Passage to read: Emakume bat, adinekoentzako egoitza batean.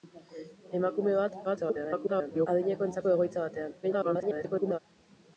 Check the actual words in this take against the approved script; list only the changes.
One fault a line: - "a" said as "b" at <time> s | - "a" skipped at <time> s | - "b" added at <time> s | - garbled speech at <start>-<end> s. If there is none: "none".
- garbled speech at 1.4-2.5 s
- garbled speech at 3.8-4.8 s